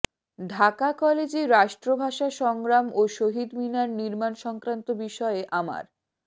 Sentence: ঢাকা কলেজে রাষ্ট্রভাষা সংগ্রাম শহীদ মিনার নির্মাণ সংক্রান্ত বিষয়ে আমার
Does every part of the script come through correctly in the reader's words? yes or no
no